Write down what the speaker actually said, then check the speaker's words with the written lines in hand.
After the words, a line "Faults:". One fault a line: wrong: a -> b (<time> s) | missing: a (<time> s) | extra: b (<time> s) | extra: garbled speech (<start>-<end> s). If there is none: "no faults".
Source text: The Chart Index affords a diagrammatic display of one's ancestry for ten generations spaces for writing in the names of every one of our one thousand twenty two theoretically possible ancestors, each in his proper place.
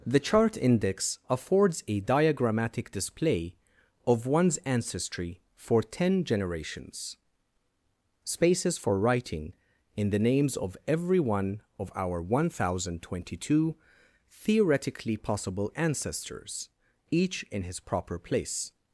The Chart Index affords a diagrammatic display of one's ancestry for ten generations spaces for writing in the names of every one of our one thousand twenty two theoretically possible ancestors, each in his proper place.
Faults:
no faults